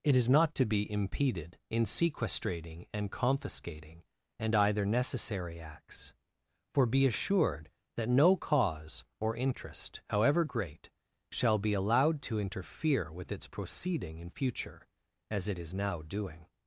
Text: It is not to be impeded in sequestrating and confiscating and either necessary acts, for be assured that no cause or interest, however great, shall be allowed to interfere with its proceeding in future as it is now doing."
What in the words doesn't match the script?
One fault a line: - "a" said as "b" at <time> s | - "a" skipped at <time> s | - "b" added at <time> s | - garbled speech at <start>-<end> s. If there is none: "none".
none